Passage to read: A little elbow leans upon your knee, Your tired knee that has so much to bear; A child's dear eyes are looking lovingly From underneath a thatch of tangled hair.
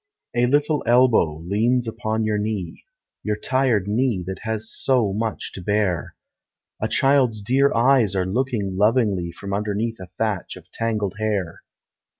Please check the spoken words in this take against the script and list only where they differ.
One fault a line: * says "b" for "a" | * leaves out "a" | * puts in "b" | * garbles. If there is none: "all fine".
all fine